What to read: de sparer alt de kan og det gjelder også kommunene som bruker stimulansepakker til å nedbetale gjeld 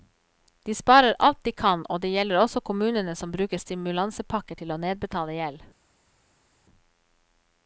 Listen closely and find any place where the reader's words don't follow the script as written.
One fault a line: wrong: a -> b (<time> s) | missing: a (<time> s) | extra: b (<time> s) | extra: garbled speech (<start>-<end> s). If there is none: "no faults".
no faults